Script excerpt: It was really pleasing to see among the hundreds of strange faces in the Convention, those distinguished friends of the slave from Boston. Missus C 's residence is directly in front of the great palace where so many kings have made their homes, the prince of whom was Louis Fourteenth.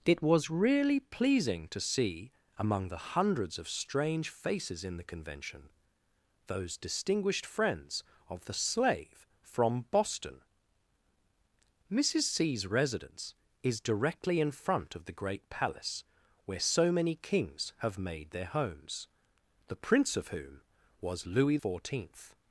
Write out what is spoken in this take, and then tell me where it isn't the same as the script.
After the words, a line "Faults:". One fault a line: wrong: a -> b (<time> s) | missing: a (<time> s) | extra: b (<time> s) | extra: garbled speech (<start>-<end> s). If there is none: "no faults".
It was really pleasing to see among the hundreds of strange faces in the Convention, those distinguished friends of the slave from Boston. Missus C 's residence is directly in front of the great palace where so many kings have made their homes, the prince of whom was Louis Fourteenth.
Faults:
no faults